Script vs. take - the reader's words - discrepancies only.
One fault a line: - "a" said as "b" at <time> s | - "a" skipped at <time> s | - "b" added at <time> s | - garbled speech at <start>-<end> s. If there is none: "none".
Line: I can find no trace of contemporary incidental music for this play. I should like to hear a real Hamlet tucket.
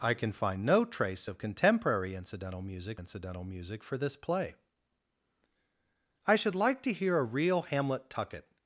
- "incidental music" added at 3.0 s